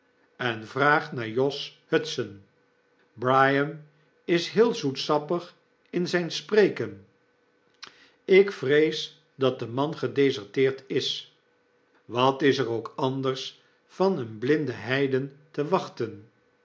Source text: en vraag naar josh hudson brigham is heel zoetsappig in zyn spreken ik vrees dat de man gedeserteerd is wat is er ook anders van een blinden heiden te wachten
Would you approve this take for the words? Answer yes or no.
yes